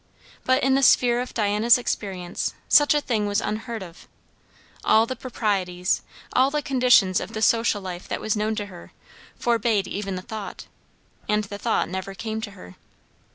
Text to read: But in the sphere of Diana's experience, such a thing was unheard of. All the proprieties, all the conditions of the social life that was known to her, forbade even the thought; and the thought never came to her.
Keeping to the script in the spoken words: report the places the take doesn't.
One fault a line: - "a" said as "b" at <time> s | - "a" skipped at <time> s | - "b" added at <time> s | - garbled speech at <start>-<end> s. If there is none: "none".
none